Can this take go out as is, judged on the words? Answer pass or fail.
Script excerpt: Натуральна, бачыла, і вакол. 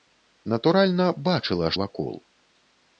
pass